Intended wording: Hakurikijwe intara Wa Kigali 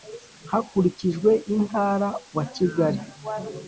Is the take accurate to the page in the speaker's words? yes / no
yes